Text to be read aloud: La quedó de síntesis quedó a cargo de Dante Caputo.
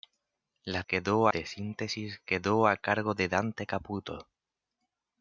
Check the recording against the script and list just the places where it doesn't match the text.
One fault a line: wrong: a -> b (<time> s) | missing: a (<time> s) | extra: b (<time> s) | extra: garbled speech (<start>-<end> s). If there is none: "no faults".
no faults